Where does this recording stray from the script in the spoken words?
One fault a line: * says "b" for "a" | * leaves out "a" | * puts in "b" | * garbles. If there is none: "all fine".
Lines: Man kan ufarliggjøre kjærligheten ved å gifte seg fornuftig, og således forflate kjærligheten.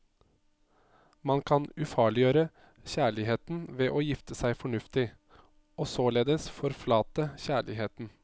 all fine